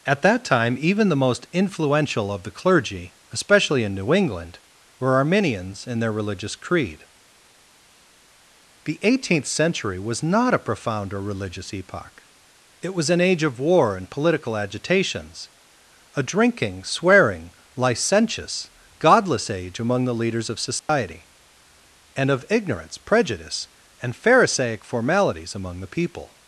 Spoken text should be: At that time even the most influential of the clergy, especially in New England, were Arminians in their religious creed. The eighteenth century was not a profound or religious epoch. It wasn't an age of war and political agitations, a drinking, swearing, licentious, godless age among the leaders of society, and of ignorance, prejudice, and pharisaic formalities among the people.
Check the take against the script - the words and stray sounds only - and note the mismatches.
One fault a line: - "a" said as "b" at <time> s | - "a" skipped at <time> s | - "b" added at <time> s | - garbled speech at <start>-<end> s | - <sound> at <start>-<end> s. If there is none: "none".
- "wasn't" said as "was" at 12.9 s
- dropout at 20.8-20.9 s